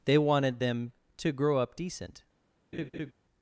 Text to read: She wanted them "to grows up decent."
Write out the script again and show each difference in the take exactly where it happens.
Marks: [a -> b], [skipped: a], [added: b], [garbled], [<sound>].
[She -> They] wanted them "to [grows -> grow] up decent." [laugh]